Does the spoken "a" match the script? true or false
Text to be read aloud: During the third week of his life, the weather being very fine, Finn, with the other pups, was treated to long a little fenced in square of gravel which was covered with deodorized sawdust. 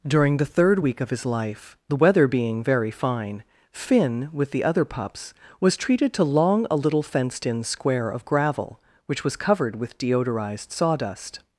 true